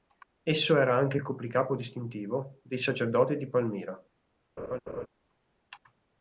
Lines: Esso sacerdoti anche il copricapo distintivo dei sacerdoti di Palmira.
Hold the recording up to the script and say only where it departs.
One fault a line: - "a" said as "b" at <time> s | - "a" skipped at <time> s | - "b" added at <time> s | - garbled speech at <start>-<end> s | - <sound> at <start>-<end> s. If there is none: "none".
- "sacerdoti" said as "era" at 0.8 s
- laugh at 4.6-5.1 s